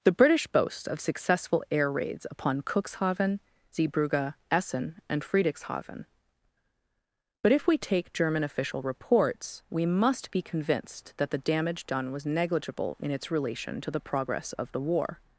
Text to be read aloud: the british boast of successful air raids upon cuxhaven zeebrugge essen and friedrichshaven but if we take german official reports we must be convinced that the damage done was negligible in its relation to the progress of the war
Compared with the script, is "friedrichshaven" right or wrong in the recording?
right